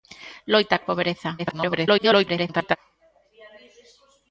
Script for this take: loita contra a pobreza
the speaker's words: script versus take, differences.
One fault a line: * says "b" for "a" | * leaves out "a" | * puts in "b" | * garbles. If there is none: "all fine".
* leaves out "contra"
* garbles